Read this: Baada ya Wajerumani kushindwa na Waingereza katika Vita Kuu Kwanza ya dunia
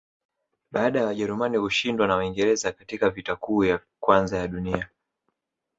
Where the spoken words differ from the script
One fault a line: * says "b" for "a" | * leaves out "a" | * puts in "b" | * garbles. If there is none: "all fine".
* puts in "ya"